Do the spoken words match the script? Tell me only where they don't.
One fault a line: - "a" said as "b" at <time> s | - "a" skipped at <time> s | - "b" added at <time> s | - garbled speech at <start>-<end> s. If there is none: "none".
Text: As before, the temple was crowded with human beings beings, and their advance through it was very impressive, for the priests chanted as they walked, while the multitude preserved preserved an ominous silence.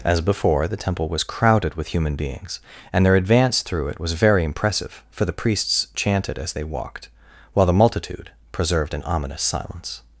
- "beings" skipped at 2.6 s
- "preserved" skipped at 8.9 s